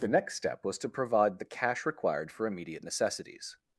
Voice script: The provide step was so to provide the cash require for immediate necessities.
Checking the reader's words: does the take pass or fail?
fail